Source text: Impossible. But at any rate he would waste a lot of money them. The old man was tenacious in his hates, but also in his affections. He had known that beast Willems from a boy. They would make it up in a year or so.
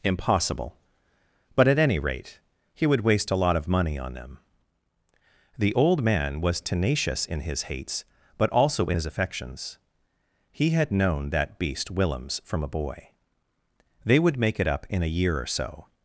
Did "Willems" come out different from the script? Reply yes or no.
no